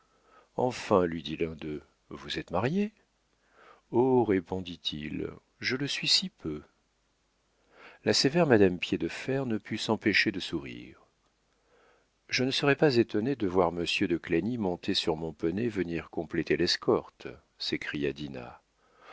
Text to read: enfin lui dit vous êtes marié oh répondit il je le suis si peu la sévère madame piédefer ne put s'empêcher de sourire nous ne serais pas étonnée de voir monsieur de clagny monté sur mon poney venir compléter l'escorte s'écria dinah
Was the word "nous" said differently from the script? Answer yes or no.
yes